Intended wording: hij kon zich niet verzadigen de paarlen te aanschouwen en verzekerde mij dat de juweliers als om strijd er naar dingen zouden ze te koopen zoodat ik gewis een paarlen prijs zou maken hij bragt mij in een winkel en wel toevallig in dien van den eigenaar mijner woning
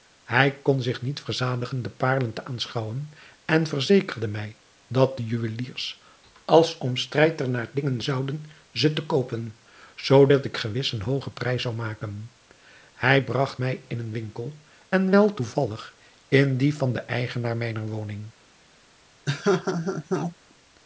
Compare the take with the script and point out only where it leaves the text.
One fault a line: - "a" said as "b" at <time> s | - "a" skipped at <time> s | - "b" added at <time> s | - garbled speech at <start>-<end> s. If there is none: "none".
- "paarlen" said as "hoogen" at 11.0 s